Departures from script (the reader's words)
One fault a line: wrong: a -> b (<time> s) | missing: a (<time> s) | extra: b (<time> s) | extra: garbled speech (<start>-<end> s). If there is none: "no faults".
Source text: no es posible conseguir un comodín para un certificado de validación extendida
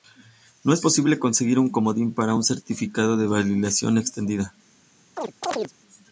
no faults